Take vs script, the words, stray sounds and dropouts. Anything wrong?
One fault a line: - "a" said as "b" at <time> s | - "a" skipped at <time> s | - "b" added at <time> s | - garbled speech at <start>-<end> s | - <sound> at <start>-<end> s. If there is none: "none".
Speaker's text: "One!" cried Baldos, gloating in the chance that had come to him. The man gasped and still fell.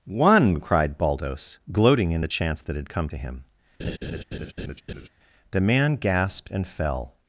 - laugh at 3.8-5.1 s
- "still" skipped at 6.7 s